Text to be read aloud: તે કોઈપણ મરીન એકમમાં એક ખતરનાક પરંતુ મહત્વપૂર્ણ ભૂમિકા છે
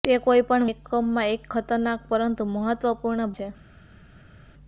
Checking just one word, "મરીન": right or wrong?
wrong